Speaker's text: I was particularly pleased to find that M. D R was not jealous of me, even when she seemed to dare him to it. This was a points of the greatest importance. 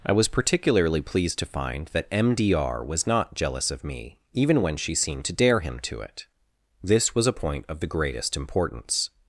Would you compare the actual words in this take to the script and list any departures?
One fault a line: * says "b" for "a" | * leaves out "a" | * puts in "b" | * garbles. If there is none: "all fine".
* says "point" for "points"